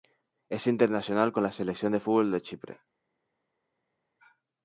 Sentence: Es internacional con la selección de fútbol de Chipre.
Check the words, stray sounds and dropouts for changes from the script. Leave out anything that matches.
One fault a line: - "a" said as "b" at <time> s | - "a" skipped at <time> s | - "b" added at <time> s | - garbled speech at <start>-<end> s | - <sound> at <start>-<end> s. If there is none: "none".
none